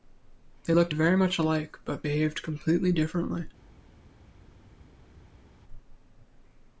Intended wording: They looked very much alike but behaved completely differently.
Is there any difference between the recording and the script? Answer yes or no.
no